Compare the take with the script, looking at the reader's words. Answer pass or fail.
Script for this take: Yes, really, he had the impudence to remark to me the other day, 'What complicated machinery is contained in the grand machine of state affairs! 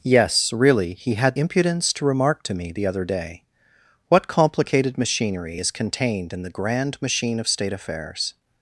fail